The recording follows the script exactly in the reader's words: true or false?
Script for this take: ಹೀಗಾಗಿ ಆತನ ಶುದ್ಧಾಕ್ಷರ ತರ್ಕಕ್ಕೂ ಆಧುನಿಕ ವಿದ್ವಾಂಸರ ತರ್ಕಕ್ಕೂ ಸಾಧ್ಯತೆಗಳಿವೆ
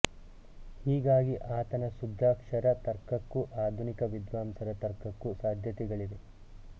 true